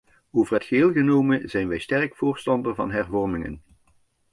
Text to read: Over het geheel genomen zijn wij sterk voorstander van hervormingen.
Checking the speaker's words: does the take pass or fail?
pass